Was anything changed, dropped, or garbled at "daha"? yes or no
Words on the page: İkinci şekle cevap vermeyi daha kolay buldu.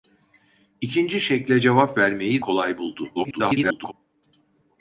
yes